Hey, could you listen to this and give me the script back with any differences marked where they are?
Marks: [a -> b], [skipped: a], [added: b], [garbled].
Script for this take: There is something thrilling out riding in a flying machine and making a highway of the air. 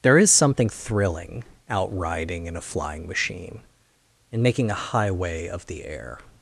There is something thrilling out riding in a flying machine and making a highway of the air.